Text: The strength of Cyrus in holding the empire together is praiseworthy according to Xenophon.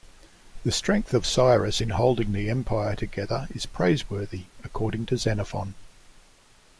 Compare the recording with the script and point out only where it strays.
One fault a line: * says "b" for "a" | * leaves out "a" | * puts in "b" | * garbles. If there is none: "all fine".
all fine